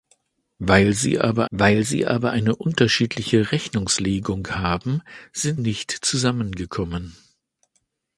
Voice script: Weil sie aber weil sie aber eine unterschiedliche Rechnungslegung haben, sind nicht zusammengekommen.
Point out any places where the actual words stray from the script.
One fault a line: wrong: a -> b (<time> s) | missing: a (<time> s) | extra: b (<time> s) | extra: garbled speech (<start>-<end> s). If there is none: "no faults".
no faults